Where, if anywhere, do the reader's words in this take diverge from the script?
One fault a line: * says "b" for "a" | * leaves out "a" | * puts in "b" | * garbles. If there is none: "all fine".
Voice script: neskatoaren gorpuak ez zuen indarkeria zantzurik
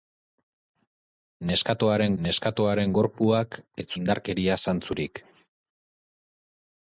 * puts in "neskatoaren"
* leaves out "zuen"